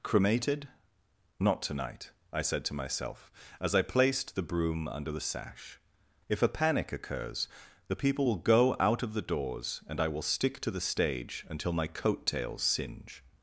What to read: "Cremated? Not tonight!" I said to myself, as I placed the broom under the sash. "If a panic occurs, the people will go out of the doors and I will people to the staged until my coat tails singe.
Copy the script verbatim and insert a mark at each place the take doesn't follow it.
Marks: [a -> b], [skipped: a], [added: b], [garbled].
"Cremated? Not tonight!" I said to myself, as I placed the broom under the sash. "If a panic occurs, the people will go out of the doors and I will [people -> stick] to the [staged -> stage] until my coat tails singe.